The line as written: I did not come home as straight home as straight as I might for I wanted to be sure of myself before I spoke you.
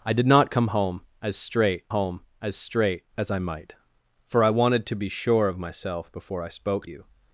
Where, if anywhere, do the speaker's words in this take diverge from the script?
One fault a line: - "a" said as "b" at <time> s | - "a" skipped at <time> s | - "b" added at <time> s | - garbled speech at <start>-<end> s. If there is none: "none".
none